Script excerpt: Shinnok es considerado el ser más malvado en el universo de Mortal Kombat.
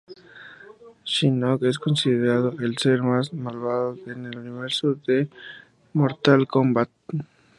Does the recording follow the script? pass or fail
pass